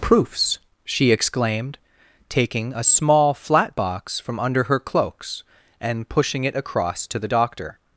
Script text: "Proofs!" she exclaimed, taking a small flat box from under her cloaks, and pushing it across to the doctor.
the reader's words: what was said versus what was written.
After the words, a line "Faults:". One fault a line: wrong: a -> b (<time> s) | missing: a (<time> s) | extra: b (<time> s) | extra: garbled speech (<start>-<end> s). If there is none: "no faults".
"Proofs!" she exclaimed, taking a small flat box from under her cloaks, and pushing it across to the doctor.
Faults:
no faults